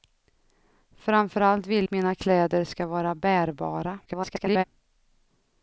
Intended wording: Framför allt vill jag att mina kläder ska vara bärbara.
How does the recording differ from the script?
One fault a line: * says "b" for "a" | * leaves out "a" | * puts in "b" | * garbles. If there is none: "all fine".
* leaves out "jag"
* garbles